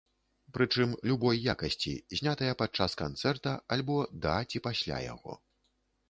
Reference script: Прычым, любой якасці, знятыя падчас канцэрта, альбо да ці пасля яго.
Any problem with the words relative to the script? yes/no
no